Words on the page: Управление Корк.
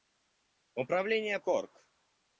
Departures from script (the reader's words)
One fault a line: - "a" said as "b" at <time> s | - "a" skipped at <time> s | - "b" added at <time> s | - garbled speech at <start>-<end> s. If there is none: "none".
none